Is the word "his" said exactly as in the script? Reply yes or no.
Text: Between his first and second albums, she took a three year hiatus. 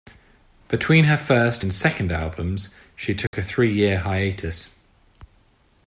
no